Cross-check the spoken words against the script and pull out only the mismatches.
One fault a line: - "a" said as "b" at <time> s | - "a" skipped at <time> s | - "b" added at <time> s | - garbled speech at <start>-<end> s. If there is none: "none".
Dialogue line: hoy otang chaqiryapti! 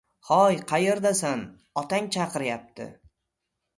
- "qayerdasan" added at 0.7 s